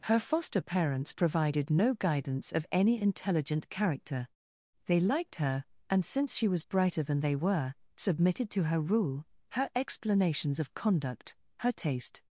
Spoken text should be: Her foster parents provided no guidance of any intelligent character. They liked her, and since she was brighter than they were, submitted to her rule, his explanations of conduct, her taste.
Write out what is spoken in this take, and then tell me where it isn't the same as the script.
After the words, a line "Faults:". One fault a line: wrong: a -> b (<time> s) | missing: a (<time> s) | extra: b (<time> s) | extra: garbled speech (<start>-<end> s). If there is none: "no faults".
Her foster parents provided no guidance of any intelligent character. They liked her, and since she was brighter than they were, submitted to her rule, her explanations of conduct, her taste.
Faults:
wrong: his -> her (9.5 s)